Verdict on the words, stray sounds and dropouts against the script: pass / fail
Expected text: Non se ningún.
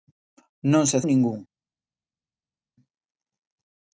pass